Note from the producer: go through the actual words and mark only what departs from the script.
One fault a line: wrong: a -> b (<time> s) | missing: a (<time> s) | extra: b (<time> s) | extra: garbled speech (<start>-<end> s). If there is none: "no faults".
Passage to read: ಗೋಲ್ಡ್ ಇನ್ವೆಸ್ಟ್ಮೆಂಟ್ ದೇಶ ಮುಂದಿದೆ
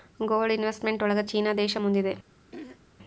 extra: ಒಳಗ ಚೀನಾ (1.0 s)